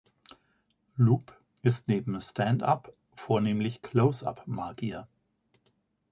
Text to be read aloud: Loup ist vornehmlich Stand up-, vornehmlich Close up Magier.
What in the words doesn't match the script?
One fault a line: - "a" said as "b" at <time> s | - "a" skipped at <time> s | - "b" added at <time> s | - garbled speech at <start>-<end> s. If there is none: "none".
- "vornehmlich" said as "neben" at 1.9 s